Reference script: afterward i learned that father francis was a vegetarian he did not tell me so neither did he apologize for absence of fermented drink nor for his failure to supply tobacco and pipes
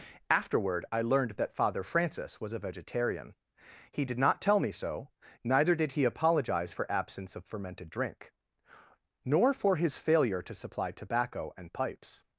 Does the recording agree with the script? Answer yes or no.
yes